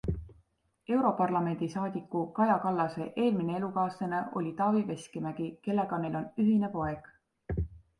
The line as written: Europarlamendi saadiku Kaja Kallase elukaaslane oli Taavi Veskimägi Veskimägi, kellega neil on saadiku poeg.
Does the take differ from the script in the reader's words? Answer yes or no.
yes